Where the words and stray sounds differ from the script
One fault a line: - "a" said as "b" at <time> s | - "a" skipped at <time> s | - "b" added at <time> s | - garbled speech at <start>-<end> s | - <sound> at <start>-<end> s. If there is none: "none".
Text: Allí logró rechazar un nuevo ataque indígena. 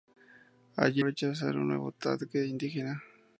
- "logró" skipped at 1.0 s